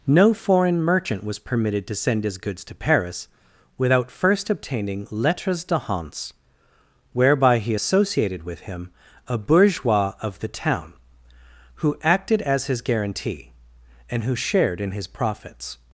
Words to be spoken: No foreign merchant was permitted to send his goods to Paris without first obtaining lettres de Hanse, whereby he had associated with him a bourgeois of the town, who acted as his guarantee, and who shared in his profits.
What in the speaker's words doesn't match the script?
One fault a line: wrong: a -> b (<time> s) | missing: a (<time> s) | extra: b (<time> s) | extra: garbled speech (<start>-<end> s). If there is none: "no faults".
missing: had (7.8 s)